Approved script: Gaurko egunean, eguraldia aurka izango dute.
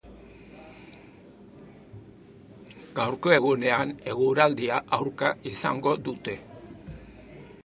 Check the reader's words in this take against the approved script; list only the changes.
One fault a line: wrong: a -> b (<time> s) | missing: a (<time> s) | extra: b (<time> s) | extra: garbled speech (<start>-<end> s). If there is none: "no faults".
no faults